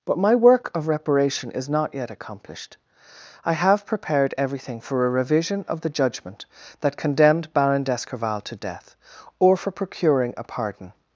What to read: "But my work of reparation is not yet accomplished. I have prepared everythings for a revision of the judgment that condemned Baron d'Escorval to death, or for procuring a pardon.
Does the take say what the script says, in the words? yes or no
no